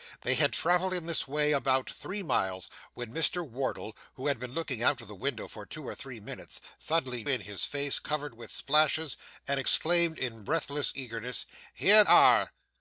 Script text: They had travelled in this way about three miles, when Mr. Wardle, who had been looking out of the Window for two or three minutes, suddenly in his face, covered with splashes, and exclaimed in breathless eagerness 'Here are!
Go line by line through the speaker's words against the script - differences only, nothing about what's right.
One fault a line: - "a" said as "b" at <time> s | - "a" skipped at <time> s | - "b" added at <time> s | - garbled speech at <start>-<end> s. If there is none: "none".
none